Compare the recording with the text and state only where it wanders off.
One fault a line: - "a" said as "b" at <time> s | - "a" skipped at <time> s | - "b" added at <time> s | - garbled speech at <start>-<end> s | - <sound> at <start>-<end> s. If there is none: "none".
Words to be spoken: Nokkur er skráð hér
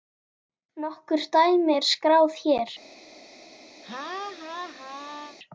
- "dæmi" added at 1.3 s
- laugh at 3.8-5.4 s